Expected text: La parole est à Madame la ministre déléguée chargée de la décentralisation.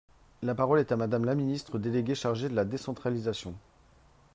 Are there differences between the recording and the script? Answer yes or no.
no